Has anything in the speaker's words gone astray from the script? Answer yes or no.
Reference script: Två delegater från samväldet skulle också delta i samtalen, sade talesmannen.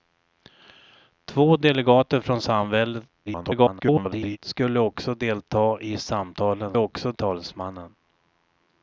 yes